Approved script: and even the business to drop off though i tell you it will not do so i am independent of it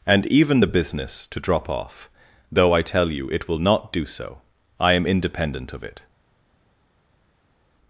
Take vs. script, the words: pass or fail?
pass